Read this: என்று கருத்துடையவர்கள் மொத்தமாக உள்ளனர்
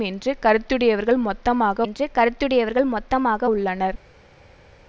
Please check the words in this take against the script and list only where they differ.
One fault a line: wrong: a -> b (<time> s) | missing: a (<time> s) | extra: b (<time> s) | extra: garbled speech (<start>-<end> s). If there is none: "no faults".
extra: என்று கருத்துடையவர்கள் மொத்தமாக (1.8 s)